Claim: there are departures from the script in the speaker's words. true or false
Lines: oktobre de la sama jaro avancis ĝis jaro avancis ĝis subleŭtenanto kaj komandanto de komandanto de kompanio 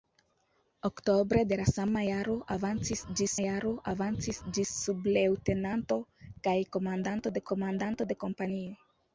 false